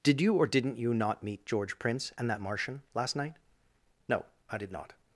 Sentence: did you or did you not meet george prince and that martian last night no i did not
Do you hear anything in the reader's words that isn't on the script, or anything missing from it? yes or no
yes